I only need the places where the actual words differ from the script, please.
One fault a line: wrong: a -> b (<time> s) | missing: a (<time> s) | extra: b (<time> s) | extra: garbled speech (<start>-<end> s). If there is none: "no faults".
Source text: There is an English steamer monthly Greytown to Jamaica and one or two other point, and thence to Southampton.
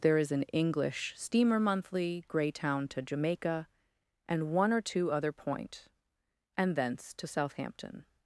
no faults